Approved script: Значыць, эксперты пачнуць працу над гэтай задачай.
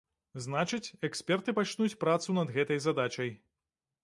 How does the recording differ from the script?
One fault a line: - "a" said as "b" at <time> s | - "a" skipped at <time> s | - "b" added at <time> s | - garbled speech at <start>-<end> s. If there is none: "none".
none